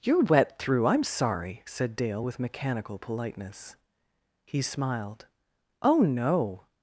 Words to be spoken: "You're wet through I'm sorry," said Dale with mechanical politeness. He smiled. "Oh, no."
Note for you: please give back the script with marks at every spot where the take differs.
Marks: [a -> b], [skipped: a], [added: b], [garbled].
"You're wet through I'm sorry," said Dale with mechanical politeness. He smiled. "Oh, no."